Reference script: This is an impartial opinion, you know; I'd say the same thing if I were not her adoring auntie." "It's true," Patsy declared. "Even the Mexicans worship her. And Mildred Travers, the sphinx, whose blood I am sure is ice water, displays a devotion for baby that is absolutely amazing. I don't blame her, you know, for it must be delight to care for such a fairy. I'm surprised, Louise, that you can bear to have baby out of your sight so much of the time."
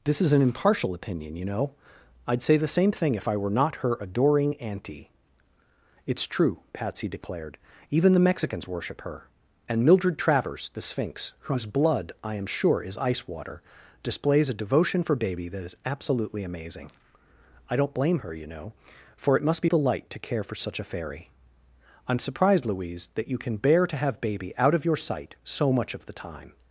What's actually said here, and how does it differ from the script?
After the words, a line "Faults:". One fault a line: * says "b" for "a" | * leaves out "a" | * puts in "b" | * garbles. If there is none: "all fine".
This is an impartial opinion, you know; I'd say the same thing if I were not her adoring auntie." "It's true," Patsy declared. "Even the Mexicans worship her. And Mildred Travers, the sphinx, whose blood I am sure is ice water, displays a devotion for baby that is absolutely amazing. I don't blame her, you know, for it must be delight to care for such a fairy. I'm surprised, Louise, that you can bear to have baby out of your sight so much of the time."
Faults:
all fine